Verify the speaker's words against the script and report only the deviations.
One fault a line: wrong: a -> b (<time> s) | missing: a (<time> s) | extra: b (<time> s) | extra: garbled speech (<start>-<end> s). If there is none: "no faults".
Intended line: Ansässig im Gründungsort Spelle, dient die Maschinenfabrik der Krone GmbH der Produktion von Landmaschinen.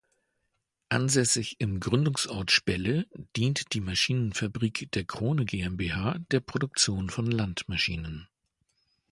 no faults